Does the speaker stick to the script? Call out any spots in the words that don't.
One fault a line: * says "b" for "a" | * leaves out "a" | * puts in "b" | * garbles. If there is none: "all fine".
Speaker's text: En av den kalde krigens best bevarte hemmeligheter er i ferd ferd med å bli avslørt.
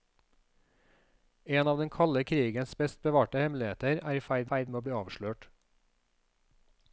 all fine